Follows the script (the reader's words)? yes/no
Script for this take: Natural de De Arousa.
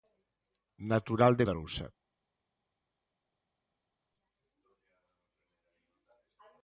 yes